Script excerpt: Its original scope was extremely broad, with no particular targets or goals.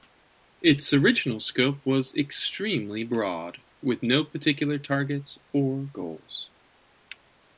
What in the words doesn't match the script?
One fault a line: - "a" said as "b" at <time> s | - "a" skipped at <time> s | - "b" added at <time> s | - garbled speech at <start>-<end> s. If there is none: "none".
none